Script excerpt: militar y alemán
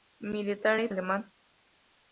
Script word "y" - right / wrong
right